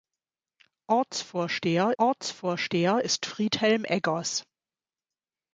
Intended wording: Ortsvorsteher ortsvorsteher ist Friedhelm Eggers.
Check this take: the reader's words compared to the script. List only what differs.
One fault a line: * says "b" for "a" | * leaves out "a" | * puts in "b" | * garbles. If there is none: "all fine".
all fine